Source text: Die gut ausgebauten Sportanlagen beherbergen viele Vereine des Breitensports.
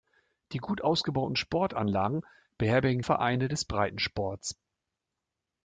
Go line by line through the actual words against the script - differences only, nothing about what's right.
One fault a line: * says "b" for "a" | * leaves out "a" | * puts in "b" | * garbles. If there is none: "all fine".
* leaves out "viele"